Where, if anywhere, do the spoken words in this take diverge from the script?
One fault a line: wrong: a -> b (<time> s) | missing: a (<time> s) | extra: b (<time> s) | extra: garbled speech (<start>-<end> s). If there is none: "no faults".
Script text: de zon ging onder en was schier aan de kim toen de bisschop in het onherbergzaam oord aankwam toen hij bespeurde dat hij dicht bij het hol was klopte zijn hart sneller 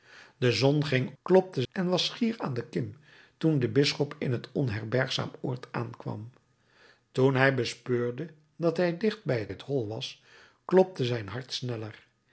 wrong: onder -> klopte (1.2 s)
extra: het (9.5 s)